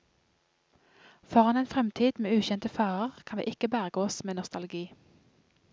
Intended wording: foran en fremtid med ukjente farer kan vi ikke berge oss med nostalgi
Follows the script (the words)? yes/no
yes